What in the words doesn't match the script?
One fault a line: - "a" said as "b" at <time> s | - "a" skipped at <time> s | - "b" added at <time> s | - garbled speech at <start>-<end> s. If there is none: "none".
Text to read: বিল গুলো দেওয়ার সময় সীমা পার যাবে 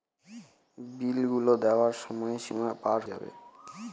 none